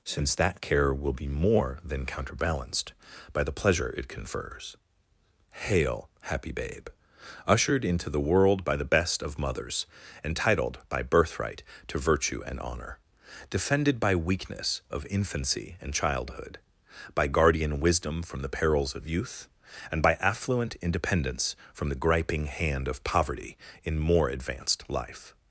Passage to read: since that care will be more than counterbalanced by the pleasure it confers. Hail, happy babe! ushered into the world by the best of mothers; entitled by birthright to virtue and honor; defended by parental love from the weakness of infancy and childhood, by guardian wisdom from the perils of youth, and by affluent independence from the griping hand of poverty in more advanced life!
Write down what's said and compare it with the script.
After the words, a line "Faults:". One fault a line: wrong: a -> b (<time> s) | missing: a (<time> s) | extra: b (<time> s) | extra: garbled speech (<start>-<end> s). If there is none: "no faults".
since that care will be more than counterbalanced by the pleasure it confers. Hail, happy babe! ushered into the world by the best of mothers; entitled by birthright to virtue and honor; defended by weakness of infancy and childhood, by guardian wisdom from the perils of youth, and by affluent independence from the griping hand of poverty in more advanced life!
Faults:
missing: parental love from the (14.2 s)